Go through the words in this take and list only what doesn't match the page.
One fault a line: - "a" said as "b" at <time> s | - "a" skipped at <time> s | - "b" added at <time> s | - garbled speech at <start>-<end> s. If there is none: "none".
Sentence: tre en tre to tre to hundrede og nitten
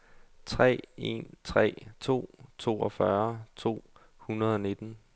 - "tre" said as "toogfyrre" at 2.6 s